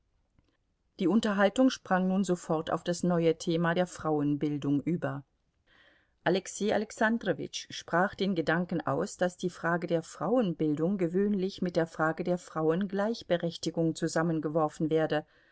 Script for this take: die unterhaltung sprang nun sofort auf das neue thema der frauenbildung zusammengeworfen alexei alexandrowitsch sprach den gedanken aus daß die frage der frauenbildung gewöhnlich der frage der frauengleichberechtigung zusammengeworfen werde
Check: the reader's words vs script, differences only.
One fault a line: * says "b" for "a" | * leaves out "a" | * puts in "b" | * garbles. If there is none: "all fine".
* says "über" for "zusammengeworfen"
* puts in "mit"